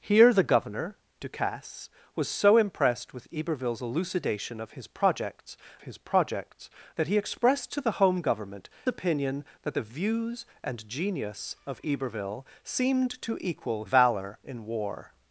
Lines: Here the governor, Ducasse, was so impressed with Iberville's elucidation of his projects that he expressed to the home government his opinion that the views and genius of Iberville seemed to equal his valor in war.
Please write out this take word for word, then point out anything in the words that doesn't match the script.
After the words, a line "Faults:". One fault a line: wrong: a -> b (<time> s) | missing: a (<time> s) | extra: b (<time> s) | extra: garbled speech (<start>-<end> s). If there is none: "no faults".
Here the governor, Ducasse, was so impressed with Iberville's elucidation of his projects his projects that he expressed to the home government opinion that the views and genius of Iberville seemed to equal valor in war.
Faults:
extra: his projects (5.8 s)
missing: his (8.7 s)
missing: his (13.8 s)